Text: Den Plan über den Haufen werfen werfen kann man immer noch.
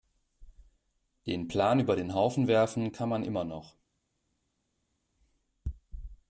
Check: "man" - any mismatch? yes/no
no